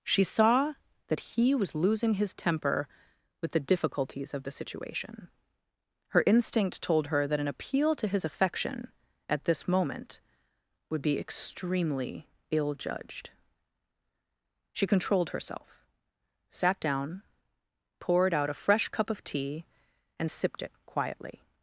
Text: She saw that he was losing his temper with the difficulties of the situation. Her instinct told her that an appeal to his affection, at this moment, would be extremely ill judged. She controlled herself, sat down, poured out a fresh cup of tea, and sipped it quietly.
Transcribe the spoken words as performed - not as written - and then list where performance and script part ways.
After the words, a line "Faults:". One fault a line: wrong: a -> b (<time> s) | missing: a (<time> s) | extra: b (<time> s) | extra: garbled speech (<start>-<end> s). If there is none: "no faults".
She saw that he was losing his temper with the difficulties of the situation. Her instinct told her that an appeal to his affection, at this moment, would be extremely ill judged. She controlled herself, sat down, poured out a fresh cup of tea, and sipped it quietly.
Faults:
no faults